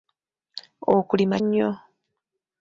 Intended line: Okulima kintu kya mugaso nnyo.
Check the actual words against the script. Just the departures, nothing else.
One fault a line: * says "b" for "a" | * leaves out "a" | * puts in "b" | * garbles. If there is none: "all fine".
* leaves out "kintu kya mugaso"